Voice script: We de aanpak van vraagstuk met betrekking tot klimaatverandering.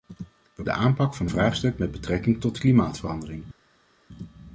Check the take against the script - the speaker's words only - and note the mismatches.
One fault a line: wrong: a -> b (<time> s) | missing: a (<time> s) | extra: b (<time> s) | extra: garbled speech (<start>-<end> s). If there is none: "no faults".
no faults